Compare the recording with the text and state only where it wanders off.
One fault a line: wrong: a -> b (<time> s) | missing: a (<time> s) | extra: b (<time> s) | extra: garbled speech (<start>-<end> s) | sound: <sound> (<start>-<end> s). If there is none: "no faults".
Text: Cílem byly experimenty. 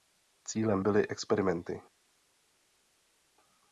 no faults